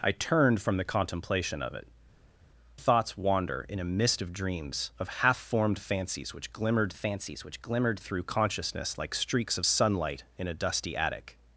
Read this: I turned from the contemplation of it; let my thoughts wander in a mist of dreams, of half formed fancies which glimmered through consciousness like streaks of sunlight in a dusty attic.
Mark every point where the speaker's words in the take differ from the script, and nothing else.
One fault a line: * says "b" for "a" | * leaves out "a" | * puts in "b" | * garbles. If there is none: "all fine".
* leaves out "let my"
* puts in "fancies which glimmered"